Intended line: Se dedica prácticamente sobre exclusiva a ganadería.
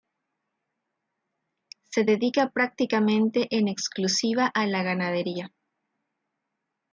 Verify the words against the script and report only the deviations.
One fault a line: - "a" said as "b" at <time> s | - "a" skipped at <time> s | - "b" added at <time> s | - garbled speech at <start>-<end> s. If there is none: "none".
- "sobre" said as "en" at 3.5 s
- "la" added at 4.7 s